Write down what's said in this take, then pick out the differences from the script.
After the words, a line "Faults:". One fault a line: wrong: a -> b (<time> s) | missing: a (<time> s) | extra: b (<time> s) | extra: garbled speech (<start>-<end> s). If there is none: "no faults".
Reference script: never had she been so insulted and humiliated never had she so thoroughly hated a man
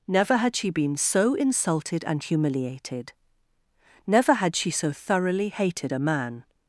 never had she been so insulted and humiliated never had she so thoroughly hated a man
Faults:
no faults